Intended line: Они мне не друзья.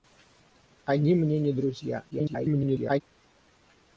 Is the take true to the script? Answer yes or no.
no